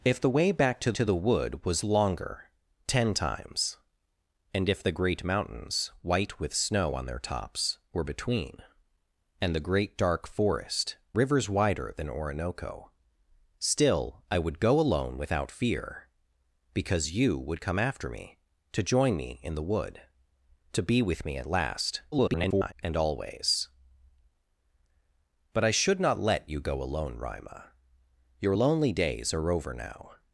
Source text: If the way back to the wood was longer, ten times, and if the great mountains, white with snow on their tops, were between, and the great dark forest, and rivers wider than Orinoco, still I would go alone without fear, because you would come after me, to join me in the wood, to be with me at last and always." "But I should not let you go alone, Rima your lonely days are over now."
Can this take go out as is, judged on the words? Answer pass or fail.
fail